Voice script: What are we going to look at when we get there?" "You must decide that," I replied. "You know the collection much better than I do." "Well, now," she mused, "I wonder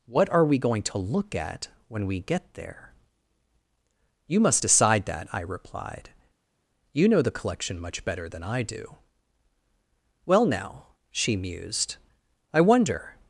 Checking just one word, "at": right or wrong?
right